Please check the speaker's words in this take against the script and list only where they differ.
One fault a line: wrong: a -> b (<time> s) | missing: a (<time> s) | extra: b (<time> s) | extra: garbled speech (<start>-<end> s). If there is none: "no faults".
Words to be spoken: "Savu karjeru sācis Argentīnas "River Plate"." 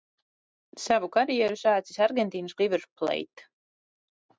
no faults